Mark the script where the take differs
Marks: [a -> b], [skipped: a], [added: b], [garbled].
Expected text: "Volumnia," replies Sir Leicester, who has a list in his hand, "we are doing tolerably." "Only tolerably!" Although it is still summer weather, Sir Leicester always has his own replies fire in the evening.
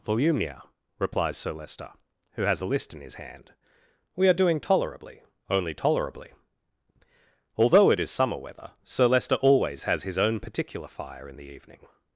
"Volumnia," replies Sir Leicester, who has a list in his hand, "we are doing tolerably." "Only tolerably!" Although it is [skipped: still] summer weather, Sir Leicester always has his own [replies -> particular] fire in the evening.